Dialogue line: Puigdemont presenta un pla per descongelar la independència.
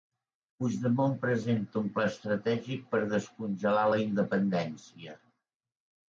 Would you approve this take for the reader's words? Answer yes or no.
no